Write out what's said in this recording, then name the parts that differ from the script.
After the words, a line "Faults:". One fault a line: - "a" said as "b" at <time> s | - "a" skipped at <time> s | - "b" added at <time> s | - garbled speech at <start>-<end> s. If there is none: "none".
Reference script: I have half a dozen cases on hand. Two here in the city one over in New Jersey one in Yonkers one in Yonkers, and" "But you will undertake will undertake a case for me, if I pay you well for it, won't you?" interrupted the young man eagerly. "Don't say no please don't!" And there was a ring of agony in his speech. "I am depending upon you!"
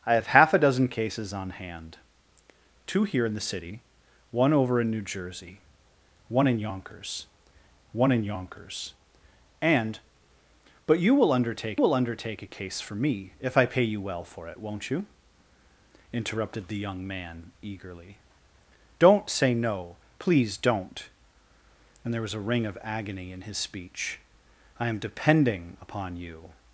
I have half a dozen cases on hand. Two here in the city one over in New Jersey one in Yonkers one in Yonkers, and" "But you will undertake will undertake a case for me, if I pay you well for it, won't you?" interrupted the young man eagerly. "Don't say no please don't!" And there was a ring of agony in his speech. "I am depending upon you!"
Faults:
none